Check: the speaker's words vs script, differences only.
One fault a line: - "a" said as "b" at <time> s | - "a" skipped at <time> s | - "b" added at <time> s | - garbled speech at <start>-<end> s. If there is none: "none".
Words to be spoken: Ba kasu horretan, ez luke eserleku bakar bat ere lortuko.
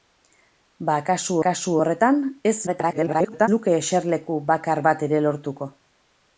- "kasu" added at 1.5 s
- garbled speech at 2.7-3.5 s